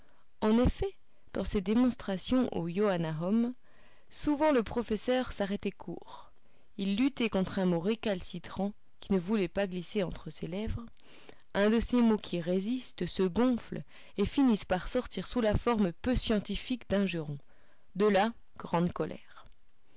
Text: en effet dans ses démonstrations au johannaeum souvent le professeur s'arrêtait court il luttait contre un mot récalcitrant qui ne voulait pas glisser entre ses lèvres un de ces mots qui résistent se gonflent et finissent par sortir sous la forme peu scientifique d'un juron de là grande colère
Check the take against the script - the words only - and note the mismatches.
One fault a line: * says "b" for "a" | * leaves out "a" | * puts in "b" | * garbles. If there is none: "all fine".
all fine